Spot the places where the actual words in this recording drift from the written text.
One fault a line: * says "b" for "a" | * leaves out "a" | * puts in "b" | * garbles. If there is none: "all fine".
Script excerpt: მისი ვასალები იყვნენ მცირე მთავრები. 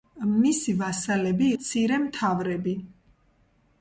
* leaves out "იყვნენ"